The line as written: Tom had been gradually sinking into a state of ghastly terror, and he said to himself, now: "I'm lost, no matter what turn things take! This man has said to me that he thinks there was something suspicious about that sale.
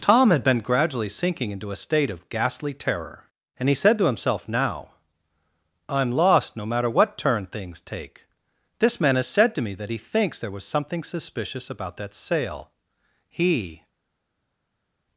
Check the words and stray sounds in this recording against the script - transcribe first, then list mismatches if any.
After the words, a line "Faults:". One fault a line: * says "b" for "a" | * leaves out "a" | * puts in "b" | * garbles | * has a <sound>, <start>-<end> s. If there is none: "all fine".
Tom had been gradually sinking into a state of ghastly terror, and he said to himself, now: "I'm lost, no matter what turn things take! This man has said to me that he thinks there was something suspicious about that sale. He
Faults:
* puts in "He"